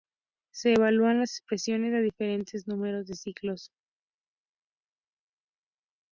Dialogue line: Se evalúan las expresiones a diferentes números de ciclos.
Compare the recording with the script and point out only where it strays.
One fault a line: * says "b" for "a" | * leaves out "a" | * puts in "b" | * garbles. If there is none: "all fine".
all fine